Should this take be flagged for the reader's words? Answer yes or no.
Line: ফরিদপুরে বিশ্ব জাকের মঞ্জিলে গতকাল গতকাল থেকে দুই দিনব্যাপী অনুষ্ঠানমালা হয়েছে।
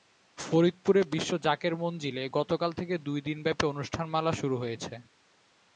yes